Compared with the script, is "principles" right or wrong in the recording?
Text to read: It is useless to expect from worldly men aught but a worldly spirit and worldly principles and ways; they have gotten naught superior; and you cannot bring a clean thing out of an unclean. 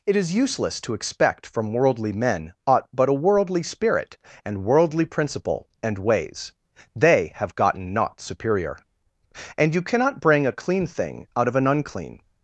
wrong